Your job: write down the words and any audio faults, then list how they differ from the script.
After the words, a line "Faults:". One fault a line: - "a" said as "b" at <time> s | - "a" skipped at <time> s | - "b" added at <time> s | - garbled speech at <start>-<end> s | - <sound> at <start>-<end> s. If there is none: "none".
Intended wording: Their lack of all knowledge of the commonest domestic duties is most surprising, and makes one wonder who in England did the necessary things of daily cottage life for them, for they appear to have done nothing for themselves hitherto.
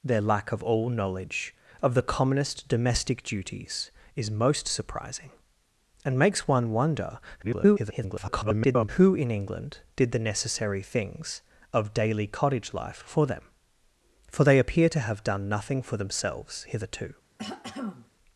Their lack of all knowledge of the commonest domestic duties is most surprising, and makes one wonder [garbled] who in England did the necessary things of daily cottage life for them, for they appear to have done nothing for themselves hitherto.
Faults:
- garbled speech at 7.4-8.9 s
- throat clearing at 17.4-18.1 s